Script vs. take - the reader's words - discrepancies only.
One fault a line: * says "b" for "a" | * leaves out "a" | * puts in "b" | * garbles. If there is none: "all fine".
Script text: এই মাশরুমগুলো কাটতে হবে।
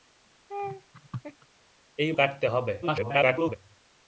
* leaves out "মাশরুমগুলো"
* garbles